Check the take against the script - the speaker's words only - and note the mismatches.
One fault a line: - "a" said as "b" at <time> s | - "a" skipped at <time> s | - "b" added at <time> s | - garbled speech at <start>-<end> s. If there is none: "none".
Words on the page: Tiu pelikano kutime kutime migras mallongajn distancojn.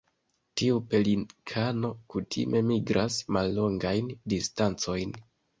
- "kutime" skipped at 2.6 s